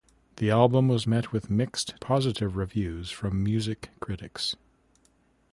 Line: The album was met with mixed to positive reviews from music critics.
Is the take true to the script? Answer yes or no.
no